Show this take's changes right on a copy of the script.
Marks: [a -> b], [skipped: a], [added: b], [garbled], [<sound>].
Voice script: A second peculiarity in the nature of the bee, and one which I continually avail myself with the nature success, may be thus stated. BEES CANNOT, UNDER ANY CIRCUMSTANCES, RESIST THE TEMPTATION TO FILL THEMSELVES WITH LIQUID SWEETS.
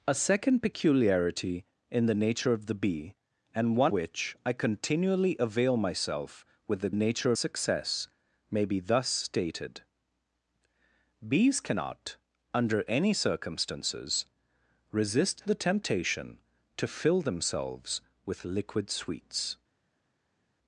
A second peculiarity in the nature of the bee, and one which I continually avail myself with the nature success, may be thus stated. BEES CANNOT, UNDER ANY CIRCUMSTANCES, RESIST THE TEMPTATION TO FILL THEMSELVES WITH LIQUID SWEETS.